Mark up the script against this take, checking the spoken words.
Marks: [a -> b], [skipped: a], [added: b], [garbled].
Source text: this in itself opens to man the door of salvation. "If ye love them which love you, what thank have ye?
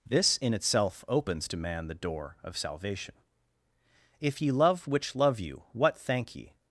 this in itself opens to man the door of salvation. "If ye love [skipped: them] which love you, what thank [skipped: have] ye?